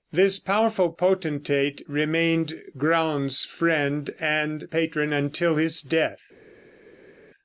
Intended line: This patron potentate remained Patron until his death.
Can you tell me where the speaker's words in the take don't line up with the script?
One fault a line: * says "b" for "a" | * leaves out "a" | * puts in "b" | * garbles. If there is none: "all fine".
* says "powerful" for "patron"
* puts in "Graun's friend and"